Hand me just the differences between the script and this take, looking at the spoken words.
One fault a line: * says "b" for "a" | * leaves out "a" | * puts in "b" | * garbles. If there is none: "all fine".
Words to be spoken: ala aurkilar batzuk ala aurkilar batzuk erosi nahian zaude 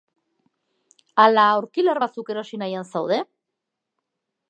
* leaves out "ala aurkilar batzuk"